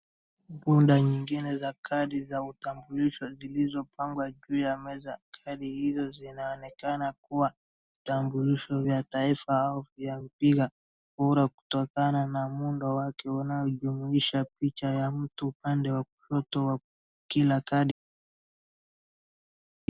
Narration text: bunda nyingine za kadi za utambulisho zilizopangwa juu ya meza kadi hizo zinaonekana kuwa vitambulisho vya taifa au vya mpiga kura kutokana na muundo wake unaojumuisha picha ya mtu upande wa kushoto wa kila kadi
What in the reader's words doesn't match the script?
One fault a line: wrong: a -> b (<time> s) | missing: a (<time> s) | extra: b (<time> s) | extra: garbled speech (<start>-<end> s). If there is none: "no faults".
no faults